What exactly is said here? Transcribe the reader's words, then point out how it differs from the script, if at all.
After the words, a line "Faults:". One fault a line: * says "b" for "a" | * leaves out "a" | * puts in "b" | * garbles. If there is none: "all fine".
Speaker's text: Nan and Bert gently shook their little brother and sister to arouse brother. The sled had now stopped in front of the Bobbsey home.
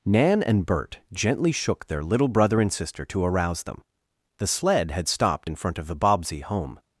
Nan and Bert gently shook their little brother and sister to arouse them. The sled had stopped in front of the Bobbsey home.
Faults:
* says "them" for "brother"
* leaves out "now"